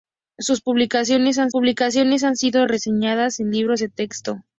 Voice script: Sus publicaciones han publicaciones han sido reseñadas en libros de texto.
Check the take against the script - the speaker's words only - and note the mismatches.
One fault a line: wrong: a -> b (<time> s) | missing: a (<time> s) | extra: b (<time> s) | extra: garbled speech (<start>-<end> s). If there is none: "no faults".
no faults